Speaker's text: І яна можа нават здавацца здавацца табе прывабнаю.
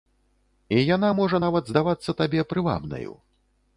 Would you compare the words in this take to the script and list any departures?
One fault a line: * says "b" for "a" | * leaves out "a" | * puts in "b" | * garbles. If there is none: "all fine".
* leaves out "здавацца"